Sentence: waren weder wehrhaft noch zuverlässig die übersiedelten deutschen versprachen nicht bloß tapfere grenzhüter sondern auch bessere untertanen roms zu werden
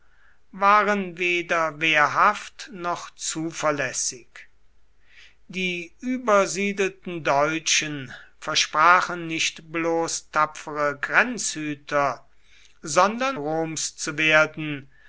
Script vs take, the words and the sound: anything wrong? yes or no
yes